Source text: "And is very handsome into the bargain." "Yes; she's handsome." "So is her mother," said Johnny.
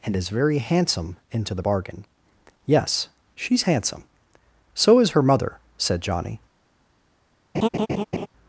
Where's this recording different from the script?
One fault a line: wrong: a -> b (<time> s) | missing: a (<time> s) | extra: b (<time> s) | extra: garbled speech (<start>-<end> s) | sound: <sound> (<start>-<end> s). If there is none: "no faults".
sound: laugh (7.5-8.3 s)